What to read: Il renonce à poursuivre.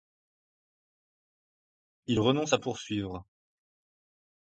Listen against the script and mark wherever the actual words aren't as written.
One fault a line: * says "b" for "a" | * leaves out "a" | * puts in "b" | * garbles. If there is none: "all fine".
all fine